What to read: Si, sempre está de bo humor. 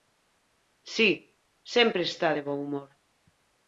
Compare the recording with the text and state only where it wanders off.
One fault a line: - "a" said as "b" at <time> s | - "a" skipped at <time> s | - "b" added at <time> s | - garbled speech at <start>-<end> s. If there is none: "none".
none